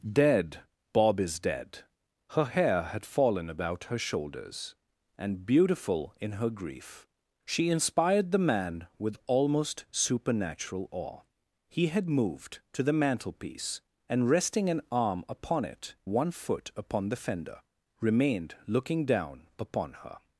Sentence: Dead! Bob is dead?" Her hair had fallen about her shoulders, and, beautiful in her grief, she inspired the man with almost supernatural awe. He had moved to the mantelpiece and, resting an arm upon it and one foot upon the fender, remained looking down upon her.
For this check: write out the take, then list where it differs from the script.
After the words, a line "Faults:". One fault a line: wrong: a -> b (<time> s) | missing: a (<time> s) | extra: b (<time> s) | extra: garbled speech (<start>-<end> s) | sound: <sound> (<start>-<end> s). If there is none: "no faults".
Dead! Bob is dead?" Her hair had fallen about her shoulders, and, beautiful in her grief, she inspired the man with almost supernatural awe. He had moved to the mantelpiece and, resting an arm upon it one foot upon the fender, remained looking down upon her.
Faults:
missing: and (15.9 s)